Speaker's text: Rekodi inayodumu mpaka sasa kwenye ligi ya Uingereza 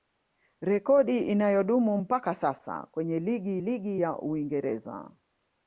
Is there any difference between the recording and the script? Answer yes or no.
yes